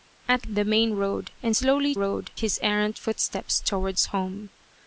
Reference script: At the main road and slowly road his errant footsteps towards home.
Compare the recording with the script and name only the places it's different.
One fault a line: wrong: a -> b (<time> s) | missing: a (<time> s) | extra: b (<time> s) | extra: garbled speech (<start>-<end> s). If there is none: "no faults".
no faults